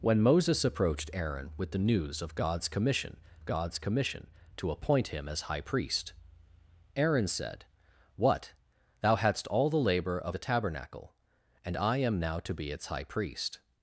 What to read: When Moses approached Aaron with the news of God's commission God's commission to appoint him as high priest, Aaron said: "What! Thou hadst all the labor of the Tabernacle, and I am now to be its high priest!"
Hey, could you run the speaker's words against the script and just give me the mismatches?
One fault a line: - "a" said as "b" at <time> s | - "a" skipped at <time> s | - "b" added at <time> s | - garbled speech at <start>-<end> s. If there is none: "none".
none